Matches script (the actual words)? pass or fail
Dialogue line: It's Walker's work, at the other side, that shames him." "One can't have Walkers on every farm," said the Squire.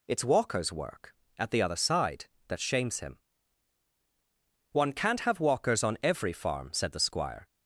pass